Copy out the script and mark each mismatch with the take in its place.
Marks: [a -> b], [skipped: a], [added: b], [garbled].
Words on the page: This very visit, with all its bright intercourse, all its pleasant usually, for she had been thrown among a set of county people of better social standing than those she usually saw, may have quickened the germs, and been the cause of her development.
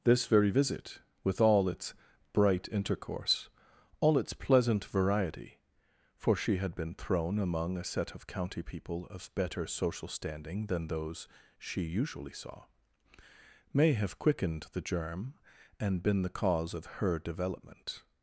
This very visit, with all its bright intercourse, all its pleasant [usually, -> variety] for she had been thrown among a set of county people of better social standing than those she usually saw, may have quickened the [germs, -> germ] and been the cause of her development.